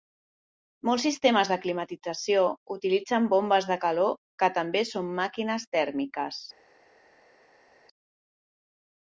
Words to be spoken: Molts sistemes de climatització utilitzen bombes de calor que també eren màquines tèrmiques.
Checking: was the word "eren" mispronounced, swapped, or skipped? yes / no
yes